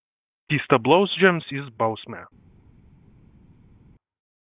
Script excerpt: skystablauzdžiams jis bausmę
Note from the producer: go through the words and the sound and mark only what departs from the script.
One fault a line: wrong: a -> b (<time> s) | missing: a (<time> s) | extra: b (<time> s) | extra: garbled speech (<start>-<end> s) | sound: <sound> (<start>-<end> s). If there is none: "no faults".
no faults